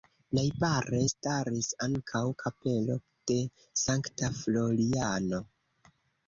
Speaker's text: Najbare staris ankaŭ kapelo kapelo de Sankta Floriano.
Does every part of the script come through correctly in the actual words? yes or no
no